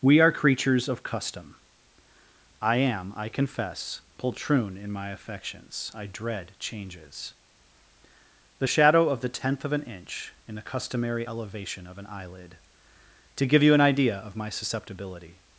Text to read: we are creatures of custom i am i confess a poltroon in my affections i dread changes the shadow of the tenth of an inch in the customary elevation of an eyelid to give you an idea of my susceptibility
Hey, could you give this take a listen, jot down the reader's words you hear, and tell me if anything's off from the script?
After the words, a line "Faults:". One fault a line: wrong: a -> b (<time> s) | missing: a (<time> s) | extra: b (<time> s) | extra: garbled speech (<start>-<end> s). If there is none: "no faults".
we are creatures of custom i am i confess poltroon in my affections i dread changes the shadow of the tenth of an inch in the customary elevation of an eyelid to give you an idea of my susceptibility
Faults:
missing: a (4.0 s)